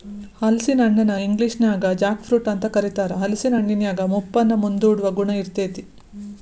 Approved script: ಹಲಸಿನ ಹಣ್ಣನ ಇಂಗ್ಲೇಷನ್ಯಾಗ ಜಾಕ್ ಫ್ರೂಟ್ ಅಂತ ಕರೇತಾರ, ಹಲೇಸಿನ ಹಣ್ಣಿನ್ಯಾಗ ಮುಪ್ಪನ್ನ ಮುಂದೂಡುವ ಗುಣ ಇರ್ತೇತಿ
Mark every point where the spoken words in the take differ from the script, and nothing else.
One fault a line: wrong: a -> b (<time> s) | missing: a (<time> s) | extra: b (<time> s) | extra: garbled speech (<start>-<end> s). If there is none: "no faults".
no faults